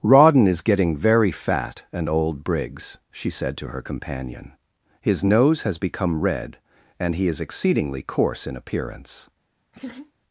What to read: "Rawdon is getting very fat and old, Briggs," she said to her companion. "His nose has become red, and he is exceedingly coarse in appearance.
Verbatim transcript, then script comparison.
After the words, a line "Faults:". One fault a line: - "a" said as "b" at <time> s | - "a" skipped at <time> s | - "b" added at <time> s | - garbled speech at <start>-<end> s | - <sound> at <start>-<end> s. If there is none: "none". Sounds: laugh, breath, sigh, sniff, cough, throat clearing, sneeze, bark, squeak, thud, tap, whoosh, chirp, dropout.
"Rawdon is getting very fat and old, Briggs," she said to her companion. "His nose has become red, and he is exceedingly coarse in appearance.
Faults:
- laugh at 9.7-10.1 s